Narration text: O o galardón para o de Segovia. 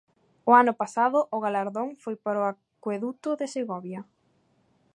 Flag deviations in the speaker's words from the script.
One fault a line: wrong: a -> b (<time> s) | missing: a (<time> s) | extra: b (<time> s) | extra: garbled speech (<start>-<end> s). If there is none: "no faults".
extra: ano pasado (0.6 s)
extra: foi (2.0 s)
extra: acueduto (2.5 s)